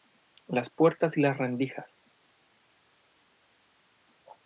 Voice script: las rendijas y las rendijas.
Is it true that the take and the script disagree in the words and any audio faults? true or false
true